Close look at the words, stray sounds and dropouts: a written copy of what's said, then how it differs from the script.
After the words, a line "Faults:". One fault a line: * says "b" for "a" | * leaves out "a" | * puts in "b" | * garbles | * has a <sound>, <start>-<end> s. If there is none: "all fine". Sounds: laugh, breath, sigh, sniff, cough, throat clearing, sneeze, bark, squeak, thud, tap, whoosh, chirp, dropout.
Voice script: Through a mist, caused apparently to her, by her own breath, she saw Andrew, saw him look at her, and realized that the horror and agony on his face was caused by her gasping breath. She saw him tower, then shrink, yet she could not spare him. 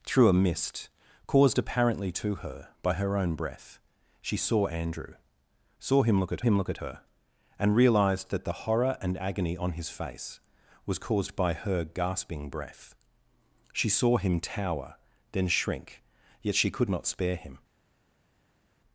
Through a mist, caused apparently to her, by her own breath, she saw Andrew, saw him look at him look at her, and realized that the horror and agony on his face was caused by her gasping breath. She saw him tower, then shrink, yet she could not spare him.
Faults:
* puts in "him look at"